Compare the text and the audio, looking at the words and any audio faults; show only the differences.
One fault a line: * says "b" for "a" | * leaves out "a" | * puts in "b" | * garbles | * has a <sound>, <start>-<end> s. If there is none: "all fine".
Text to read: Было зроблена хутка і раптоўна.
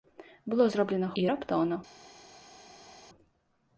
* leaves out "хутка"